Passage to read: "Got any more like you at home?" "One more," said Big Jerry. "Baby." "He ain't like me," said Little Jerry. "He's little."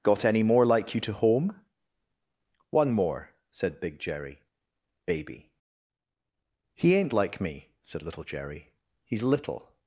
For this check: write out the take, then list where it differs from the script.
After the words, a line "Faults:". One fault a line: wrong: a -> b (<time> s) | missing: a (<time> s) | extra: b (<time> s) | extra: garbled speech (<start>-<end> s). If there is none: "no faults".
"Got any more like you to home?" "One more," said Big Jerry. "Baby." "He ain't like me," said Little Jerry. "He's little."
Faults:
wrong: at -> to (1.0 s)